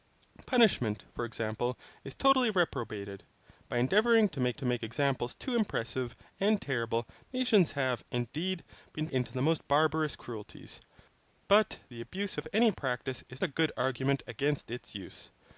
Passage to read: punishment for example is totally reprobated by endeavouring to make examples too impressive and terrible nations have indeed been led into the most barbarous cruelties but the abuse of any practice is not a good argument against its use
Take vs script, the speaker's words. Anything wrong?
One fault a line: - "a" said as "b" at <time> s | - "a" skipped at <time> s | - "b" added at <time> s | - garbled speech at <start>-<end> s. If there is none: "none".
- "to make" added at 4.5 s
- "led" skipped at 9.1 s
- "not" skipped at 13.4 s